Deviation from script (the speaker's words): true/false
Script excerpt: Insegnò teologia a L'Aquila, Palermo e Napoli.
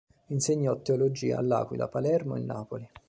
false